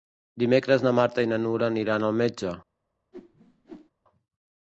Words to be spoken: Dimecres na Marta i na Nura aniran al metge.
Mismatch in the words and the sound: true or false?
true